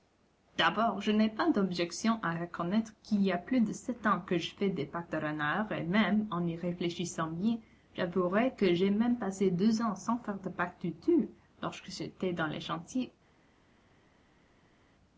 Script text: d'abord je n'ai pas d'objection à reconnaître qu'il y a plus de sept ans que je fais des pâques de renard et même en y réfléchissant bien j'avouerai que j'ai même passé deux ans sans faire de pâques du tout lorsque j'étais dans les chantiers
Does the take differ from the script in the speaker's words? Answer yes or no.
no